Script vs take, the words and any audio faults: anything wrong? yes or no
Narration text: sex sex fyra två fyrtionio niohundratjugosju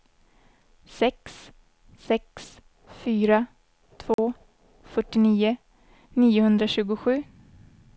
yes